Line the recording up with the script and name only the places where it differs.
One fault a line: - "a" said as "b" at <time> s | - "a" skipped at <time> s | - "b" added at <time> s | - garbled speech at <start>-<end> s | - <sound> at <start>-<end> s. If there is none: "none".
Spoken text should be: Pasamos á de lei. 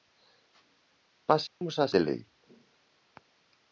- dropout at 1.5-1.6 s